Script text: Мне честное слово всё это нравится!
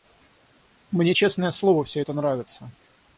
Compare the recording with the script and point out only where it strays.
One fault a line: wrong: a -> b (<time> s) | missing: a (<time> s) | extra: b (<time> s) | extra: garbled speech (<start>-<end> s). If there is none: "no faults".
no faults